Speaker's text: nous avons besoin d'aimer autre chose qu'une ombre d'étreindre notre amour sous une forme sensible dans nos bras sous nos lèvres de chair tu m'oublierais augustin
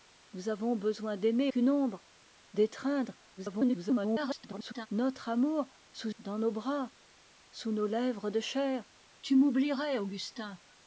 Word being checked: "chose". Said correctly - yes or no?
no